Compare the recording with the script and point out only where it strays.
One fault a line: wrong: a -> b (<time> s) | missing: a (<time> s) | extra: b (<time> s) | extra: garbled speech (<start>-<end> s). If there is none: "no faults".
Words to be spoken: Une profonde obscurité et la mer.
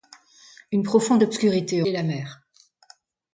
no faults